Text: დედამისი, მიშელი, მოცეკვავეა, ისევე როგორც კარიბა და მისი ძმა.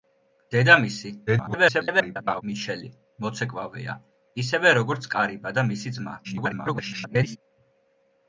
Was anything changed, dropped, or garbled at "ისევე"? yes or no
no